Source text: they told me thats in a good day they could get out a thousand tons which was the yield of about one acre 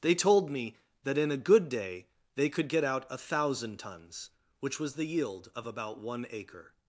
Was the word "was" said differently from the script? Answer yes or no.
no